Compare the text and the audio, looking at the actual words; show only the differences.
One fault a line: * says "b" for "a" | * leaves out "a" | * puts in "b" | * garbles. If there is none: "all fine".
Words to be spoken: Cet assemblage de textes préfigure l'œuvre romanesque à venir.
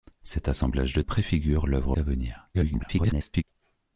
* leaves out "textes"
* leaves out "romanesque"
* garbles